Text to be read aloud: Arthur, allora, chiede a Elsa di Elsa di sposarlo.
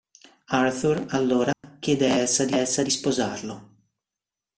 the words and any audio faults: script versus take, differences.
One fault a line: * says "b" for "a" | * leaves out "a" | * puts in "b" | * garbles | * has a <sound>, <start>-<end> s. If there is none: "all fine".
* has a dropout, 1.5-1.6 s